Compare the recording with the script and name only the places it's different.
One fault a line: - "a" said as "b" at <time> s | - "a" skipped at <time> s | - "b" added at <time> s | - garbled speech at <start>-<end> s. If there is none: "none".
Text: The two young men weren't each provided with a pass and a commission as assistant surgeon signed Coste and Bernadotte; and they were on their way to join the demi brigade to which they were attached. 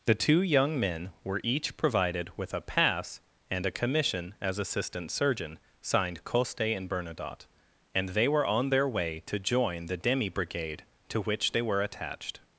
- "weren't" said as "were" at 1.2 s